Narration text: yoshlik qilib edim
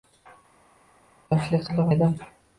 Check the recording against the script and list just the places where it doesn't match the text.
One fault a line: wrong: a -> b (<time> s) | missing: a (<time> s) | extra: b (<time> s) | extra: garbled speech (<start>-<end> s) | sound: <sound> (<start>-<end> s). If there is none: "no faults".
no faults